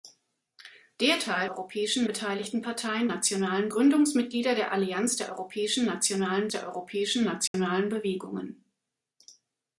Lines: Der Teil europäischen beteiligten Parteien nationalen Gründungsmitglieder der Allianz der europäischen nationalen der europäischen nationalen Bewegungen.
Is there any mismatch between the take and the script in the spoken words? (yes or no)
no